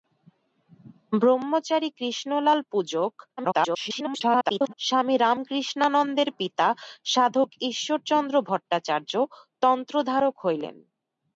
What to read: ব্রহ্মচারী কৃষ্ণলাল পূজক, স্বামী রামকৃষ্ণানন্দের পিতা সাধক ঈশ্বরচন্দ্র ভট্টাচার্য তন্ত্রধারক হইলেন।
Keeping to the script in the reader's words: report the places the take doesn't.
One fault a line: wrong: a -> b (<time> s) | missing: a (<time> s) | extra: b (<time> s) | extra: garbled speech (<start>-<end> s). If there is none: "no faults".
extra: garbled speech (3.4-4.7 s)